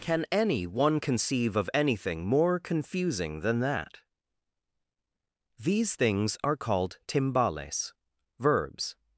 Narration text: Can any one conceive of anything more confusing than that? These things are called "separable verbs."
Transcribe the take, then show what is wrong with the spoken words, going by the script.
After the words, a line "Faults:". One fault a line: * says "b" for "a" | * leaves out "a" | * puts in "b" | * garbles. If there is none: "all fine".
Can any one conceive of anything more confusing than that? These things are called "timbales verbs."
Faults:
* says "timbales" for "separable"